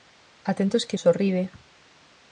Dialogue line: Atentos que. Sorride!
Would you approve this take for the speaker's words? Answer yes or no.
yes